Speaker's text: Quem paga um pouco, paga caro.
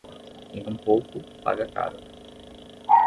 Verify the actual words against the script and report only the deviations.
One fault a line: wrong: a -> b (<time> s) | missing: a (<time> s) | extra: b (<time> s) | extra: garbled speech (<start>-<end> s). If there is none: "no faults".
missing: paga (0.6 s)